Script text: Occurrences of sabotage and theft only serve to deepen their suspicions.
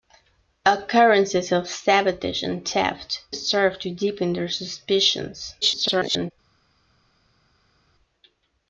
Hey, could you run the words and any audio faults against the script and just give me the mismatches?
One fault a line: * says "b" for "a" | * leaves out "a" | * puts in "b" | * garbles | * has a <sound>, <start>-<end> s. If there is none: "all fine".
* leaves out "only"
* garbles